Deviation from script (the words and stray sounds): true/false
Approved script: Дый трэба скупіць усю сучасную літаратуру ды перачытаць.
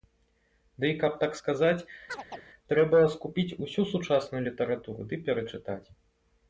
true